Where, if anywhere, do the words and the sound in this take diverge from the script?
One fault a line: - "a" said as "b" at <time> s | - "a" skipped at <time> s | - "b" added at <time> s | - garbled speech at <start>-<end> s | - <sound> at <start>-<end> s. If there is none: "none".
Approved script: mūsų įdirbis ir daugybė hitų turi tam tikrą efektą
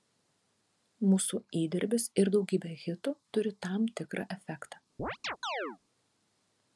- chirp at 5.0-5.8 s